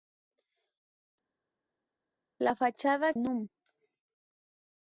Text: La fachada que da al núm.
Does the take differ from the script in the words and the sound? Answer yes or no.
yes